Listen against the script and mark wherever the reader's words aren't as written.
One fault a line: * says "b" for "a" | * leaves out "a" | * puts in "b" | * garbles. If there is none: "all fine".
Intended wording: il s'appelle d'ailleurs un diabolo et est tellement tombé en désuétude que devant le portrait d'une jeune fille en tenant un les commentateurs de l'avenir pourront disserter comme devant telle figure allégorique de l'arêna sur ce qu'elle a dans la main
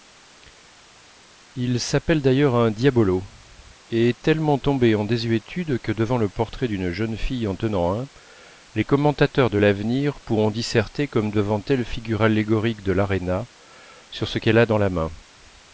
all fine